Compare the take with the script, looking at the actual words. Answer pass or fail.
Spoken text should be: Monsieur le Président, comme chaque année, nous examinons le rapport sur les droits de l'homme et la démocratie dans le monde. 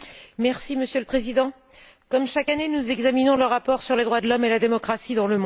pass